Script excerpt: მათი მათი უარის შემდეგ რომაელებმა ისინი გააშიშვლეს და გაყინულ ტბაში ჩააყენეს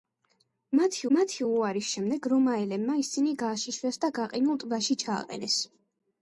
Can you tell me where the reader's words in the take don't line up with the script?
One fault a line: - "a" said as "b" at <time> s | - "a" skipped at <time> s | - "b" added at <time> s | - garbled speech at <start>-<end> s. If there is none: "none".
none